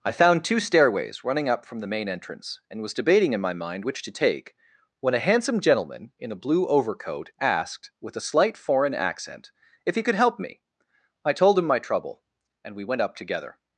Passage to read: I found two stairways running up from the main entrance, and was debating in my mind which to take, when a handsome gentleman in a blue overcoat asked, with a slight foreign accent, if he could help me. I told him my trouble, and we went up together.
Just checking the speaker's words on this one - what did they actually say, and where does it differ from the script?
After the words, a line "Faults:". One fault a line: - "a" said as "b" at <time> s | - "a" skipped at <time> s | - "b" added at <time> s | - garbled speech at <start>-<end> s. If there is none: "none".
I found two stairways running up from the main entrance, and was debating in my mind which to take, when a handsome gentleman in a blue overcoat asked, with a slight foreign accent, if he could help me. I told him my trouble, and we went up together.
Faults:
none